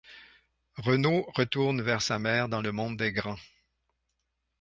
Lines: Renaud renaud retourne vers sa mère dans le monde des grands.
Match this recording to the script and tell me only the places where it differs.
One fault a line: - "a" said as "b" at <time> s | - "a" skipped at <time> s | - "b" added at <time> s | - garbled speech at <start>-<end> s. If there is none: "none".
- "renaud" skipped at 1.3 s